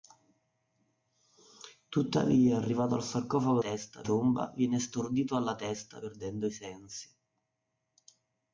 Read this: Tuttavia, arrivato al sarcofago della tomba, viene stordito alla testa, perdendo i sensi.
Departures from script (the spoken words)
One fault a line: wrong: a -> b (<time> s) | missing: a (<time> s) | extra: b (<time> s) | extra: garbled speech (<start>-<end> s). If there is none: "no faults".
wrong: della -> testa (3.6 s)